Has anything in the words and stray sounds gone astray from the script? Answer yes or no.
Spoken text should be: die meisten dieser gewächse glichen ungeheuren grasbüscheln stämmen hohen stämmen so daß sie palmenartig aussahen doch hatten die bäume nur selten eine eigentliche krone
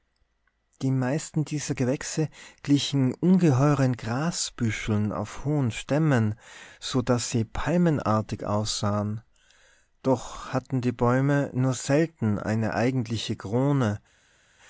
yes